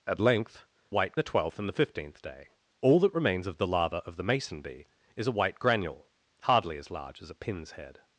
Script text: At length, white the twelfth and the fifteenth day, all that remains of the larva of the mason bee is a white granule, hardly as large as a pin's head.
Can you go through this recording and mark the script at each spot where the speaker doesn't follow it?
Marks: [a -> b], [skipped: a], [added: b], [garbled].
At length, white the twelfth and the fifteenth day, all that remains of the larva of the mason bee is a white granule, hardly as large as a pin's head.